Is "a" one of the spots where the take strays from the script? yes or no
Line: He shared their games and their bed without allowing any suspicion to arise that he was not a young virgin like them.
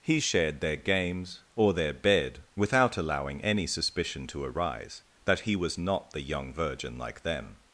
yes